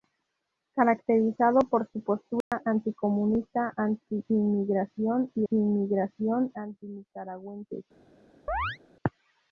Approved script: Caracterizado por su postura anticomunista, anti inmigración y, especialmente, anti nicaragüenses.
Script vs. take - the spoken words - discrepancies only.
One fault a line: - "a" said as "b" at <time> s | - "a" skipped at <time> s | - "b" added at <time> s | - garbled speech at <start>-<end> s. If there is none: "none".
- "especialmente" said as "inmigración" at 5.5 s